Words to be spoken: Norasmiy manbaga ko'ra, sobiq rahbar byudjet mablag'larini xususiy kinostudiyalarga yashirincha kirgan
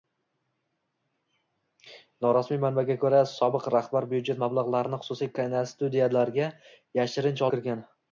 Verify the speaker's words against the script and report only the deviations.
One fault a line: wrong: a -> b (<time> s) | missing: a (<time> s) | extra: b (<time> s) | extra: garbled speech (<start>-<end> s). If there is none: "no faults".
no faults